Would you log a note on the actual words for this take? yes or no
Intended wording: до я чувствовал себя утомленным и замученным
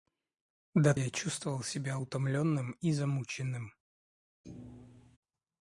no